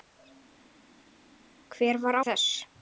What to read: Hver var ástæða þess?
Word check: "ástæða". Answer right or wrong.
wrong